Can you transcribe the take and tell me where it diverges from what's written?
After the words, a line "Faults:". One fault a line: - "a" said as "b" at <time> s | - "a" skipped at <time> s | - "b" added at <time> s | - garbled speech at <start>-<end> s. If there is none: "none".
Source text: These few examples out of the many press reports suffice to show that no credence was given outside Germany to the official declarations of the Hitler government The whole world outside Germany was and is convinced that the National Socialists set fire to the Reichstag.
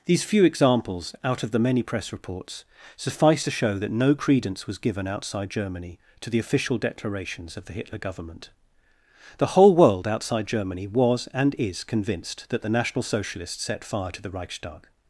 These few examples out of the many press reports suffice to show that no credence was given outside Germany to the official declarations of the Hitler government The whole world outside Germany was and is convinced that the National Socialists set fire to the Reichstag.
Faults:
none